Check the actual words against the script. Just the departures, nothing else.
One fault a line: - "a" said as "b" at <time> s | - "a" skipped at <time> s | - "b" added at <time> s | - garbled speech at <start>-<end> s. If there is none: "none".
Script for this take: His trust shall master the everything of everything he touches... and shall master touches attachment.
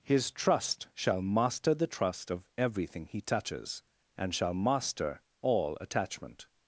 - "everything" said as "trust" at 1.9 s
- "touches" said as "all" at 5.4 s